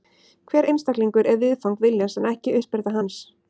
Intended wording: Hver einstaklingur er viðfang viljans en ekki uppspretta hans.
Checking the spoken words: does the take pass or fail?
pass